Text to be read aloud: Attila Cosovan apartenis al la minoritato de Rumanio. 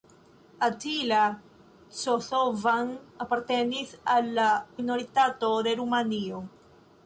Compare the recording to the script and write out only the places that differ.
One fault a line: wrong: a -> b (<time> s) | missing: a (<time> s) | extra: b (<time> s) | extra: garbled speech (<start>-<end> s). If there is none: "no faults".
no faults